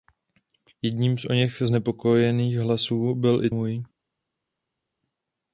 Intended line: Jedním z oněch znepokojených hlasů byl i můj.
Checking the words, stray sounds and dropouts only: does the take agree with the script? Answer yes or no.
yes